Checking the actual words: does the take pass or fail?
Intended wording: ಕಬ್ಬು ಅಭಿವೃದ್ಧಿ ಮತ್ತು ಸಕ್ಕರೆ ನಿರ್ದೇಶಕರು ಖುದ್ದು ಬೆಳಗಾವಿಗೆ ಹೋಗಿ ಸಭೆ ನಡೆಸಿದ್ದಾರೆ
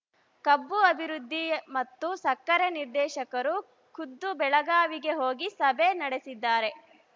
pass